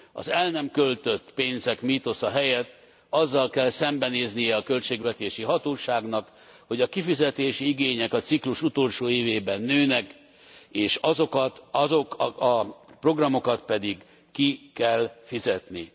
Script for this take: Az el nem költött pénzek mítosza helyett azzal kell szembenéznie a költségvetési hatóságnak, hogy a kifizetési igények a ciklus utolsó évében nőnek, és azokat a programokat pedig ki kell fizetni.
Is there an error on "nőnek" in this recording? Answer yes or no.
no